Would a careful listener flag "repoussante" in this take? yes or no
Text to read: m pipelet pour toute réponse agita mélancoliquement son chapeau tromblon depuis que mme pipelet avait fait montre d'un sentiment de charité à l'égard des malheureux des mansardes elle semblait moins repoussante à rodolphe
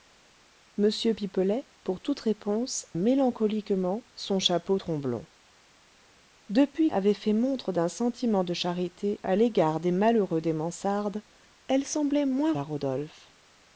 yes